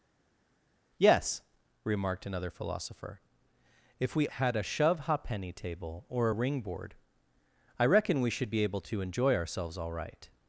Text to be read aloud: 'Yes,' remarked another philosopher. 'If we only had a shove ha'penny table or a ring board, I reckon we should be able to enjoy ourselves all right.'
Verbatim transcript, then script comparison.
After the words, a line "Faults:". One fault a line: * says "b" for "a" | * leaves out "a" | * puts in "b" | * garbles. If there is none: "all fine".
'Yes,' remarked another philosopher. 'If we had a shove ha'penny table or a ring board, I reckon we should be able to enjoy ourselves all right.'
Faults:
* leaves out "only"